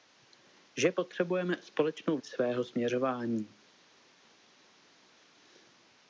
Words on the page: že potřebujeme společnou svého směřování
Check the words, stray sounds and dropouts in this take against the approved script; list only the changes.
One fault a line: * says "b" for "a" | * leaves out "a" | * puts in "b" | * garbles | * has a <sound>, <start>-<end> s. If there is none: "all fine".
all fine